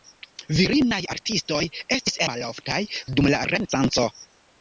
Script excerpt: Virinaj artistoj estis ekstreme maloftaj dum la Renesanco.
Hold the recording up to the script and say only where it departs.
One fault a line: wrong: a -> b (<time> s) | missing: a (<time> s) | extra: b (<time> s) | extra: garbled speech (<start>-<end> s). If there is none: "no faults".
missing: ekstreme (2.2 s)